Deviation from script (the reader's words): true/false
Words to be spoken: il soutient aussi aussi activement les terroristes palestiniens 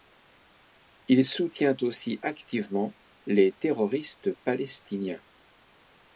true